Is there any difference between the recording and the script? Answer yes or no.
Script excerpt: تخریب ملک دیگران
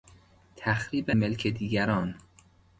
no